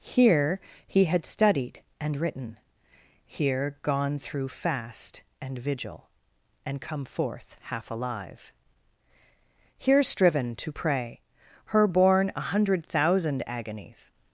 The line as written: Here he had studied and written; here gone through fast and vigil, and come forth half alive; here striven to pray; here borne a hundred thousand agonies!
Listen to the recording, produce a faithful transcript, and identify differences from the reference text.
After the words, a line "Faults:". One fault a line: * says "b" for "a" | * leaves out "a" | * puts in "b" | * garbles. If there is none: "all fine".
Here he had studied and written; here gone through fast and vigil, and come forth half alive; here striven to pray; her borne a hundred thousand agonies!
Faults:
* says "her" for "here"